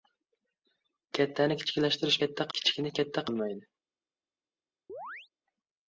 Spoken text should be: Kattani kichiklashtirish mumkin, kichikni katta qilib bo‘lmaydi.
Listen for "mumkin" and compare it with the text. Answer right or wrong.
wrong